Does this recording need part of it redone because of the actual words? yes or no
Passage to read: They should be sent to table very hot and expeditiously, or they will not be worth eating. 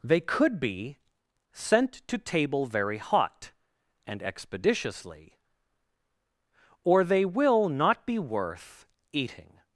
yes